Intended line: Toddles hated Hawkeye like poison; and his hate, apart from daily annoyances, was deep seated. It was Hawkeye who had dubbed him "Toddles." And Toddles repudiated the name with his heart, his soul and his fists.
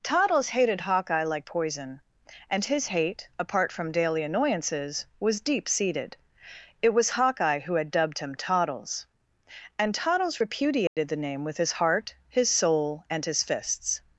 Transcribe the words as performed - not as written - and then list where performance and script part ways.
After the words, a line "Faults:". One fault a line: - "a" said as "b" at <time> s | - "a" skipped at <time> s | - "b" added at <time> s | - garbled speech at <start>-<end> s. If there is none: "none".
Toddles hated Hawkeye like poison; and his hate, apart from daily annoyances, was deep seated. It was Hawkeye who had dubbed him "Toddles." And Toddles repudiated the name with his heart, his soul and his fists.
Faults:
none